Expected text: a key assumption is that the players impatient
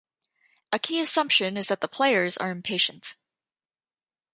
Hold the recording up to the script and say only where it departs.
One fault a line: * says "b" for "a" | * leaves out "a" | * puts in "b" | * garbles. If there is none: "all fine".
* puts in "are"